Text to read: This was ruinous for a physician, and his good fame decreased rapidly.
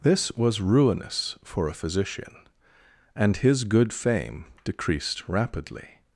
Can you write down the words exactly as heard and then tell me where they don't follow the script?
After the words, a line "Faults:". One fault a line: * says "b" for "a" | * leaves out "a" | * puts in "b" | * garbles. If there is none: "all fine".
This was ruinous for a physician, and his good fame decreased rapidly.
Faults:
all fine